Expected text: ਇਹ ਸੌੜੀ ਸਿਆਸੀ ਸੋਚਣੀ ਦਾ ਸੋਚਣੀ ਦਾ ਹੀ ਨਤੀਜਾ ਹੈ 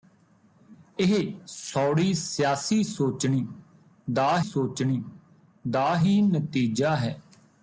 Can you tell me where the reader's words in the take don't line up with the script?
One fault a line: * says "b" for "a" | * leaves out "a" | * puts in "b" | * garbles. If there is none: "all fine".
all fine